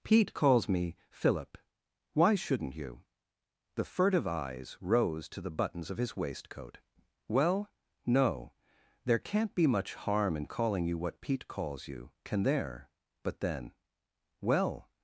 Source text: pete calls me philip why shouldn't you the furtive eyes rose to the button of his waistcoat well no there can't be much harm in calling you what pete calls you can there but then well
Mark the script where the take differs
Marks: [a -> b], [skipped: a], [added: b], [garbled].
pete calls me philip why shouldn't you the furtive eyes rose to the [button -> buttons] of his waistcoat well no there can't be much harm in calling you what pete calls you can there but then well